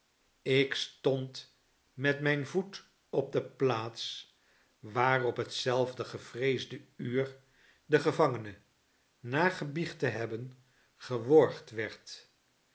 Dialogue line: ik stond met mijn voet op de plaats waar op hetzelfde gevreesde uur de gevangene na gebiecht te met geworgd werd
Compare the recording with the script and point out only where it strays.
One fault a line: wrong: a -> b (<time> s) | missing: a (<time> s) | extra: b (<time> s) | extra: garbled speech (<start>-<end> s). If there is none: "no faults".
wrong: met -> hebben (10.1 s)